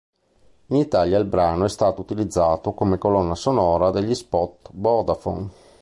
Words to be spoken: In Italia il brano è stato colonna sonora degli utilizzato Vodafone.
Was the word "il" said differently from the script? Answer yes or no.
no